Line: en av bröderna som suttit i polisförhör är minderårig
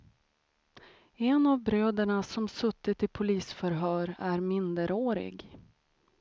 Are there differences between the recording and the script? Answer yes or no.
no